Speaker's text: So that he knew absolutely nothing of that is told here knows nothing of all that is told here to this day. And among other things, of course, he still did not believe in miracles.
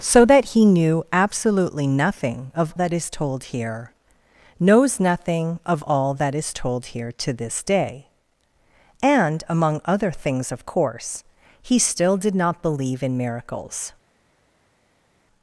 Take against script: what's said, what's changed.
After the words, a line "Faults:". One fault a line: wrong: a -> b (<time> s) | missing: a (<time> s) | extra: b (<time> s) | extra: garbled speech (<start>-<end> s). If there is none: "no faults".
So that he knew absolutely nothing of that is told here knows nothing of all that is told here to this day. And among other things, of course, he still did not believe in miracles.
Faults:
no faults